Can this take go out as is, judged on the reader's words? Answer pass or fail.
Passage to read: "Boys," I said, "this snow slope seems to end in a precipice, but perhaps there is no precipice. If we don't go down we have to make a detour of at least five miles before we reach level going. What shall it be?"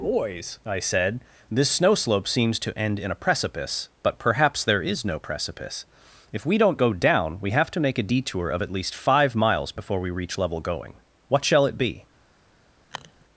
pass